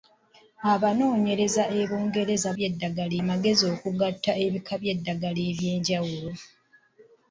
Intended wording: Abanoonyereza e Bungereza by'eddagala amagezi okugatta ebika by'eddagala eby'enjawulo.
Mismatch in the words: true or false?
false